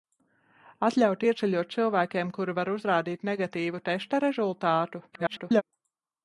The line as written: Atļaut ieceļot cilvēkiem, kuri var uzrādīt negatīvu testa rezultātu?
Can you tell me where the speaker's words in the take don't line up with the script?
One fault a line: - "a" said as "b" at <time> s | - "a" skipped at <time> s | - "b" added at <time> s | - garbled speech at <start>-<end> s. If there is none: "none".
- garbled speech at 5.1-5.6 s